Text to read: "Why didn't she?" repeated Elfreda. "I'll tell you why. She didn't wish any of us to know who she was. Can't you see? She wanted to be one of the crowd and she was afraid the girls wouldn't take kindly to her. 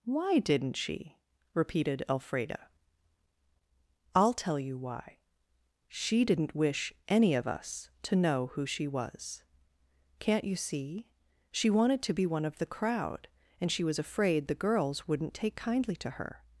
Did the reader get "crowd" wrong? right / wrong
right